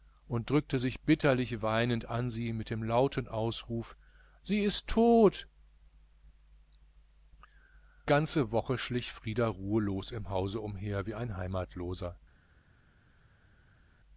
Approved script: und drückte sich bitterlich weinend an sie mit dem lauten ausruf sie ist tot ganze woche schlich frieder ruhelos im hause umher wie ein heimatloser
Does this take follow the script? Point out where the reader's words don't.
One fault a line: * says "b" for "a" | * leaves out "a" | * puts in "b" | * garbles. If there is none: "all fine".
all fine